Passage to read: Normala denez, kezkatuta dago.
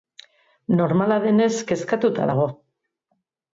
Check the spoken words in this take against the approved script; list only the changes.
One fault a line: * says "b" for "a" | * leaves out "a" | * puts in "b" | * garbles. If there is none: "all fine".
all fine